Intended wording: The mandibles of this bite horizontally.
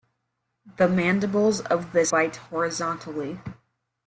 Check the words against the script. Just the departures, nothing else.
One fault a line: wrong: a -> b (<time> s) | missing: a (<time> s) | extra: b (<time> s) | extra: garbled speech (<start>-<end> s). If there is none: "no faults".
no faults